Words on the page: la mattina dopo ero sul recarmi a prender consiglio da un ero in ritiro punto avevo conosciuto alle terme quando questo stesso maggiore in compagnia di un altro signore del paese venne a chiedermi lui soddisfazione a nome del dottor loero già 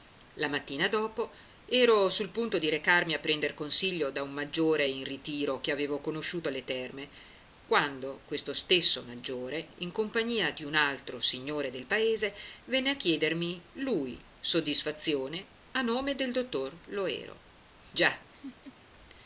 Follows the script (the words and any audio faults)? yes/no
no